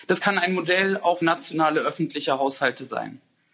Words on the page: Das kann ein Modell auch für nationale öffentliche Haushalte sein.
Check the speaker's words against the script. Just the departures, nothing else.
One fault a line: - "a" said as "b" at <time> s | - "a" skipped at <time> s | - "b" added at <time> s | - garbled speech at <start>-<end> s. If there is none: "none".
- "für" skipped at 1.2 s